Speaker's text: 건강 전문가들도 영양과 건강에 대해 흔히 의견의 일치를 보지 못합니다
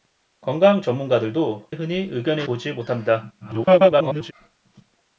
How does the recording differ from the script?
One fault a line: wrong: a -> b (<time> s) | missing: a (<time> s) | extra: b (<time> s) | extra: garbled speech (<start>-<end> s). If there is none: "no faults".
missing: 영양과 건강에 대해 (1.7 s)
missing: 일치를 (2.5 s)
extra: garbled speech (3.4-4.3 s)